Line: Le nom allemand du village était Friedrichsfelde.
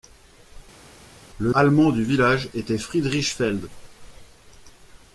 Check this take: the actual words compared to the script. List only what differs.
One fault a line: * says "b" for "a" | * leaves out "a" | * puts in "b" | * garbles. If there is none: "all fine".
* leaves out "nom"